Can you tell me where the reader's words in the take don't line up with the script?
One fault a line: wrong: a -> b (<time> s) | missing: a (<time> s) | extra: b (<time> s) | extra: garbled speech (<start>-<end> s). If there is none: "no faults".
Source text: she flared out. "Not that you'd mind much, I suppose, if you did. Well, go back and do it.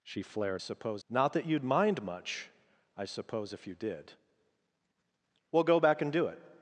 wrong: out -> suppose (0.6 s)